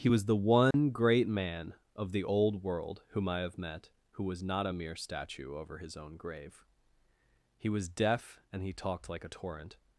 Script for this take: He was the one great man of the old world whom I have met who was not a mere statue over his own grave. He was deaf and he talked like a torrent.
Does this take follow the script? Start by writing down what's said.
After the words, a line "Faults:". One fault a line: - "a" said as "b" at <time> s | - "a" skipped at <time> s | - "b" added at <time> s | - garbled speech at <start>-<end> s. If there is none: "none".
He was the one great man of the old world whom I have met who was not a mere statue over his own grave. He was deaf and he talked like a torrent.
Faults:
none